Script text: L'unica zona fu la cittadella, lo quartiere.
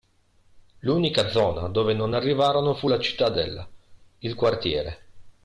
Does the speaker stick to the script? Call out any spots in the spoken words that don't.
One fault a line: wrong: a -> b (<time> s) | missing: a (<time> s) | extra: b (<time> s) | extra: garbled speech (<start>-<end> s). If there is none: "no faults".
extra: dove non arrivarono (1.7 s)
wrong: lo -> il (4.2 s)